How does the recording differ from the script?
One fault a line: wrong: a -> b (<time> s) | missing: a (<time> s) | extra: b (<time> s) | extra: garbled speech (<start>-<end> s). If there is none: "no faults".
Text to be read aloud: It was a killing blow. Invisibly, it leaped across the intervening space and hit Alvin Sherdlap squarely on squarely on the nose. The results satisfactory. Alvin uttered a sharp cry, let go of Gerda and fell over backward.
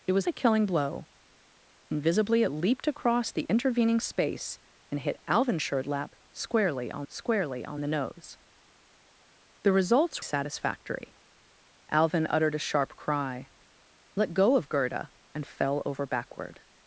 no faults